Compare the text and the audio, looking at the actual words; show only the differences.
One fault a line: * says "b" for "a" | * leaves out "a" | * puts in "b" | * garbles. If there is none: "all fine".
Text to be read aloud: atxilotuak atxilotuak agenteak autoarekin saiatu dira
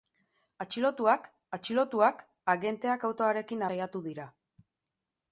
all fine